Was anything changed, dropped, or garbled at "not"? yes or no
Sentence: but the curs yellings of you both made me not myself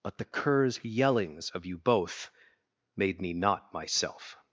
no